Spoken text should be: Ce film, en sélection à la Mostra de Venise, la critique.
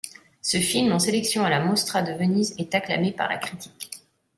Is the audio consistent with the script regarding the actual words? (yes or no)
no